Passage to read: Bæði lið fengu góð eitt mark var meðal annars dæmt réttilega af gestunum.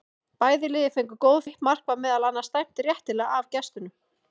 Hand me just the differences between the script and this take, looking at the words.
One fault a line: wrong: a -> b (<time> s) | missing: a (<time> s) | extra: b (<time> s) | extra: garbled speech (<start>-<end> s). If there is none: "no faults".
no faults